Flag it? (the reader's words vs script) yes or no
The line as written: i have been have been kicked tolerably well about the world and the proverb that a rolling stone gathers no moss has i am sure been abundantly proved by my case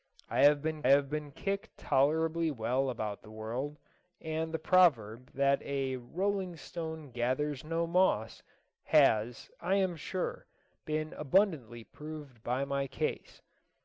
no